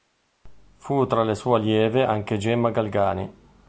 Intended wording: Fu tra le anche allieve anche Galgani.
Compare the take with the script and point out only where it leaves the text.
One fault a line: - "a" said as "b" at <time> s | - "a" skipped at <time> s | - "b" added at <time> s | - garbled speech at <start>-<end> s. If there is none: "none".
- "anche" said as "sue" at 1.4 s
- "Gemma" added at 2.4 s